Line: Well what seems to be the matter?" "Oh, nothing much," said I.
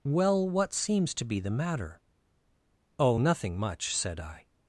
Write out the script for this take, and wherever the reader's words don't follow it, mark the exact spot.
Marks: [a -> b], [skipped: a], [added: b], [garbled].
Well what seems to be the matter?" "Oh, nothing much," said I.